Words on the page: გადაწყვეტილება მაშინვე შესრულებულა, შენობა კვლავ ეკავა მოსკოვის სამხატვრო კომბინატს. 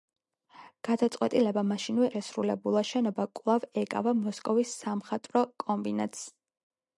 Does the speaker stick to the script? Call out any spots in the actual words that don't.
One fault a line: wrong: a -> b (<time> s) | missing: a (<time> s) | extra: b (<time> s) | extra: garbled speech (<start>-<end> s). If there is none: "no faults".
no faults